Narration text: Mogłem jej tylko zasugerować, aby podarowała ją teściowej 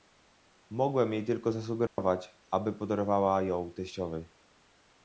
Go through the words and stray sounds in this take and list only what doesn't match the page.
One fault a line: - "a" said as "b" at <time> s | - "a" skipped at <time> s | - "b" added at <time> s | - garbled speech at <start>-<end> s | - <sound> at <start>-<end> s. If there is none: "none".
- dropout at 1.9-2.0 s